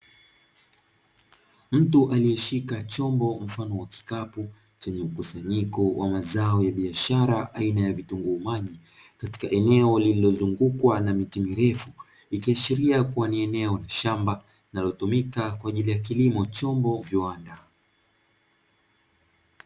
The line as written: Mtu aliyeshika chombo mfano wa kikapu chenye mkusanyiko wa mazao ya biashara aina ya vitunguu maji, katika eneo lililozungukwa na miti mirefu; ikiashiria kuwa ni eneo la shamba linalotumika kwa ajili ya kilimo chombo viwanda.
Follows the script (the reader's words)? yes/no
yes